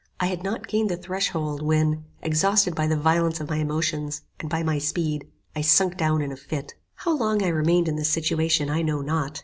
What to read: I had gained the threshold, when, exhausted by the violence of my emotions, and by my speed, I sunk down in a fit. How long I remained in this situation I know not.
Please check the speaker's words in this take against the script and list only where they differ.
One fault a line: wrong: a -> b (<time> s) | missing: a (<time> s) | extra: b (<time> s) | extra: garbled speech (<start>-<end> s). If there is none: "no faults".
extra: not (0.4 s)